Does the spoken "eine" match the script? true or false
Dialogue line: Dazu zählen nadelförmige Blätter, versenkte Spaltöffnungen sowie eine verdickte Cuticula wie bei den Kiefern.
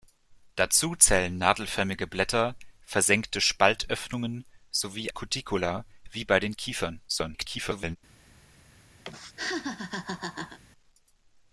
false